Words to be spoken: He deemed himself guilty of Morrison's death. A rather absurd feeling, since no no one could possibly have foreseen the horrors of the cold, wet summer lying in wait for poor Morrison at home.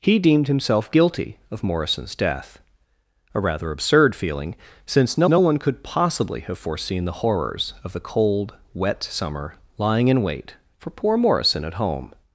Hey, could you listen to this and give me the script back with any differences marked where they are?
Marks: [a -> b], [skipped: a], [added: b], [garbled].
He deemed himself guilty of Morrison's death. A rather absurd feeling, since no no one could possibly have foreseen the horrors of the cold, wet summer lying in wait for poor Morrison at home.